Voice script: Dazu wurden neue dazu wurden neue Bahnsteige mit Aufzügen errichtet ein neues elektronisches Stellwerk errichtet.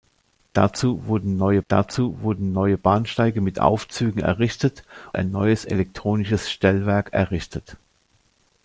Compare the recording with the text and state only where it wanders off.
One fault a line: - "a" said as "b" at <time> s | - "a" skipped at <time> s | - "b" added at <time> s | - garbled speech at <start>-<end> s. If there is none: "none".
none